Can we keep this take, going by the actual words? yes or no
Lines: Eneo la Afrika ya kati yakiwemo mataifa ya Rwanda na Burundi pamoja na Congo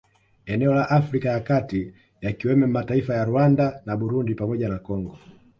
yes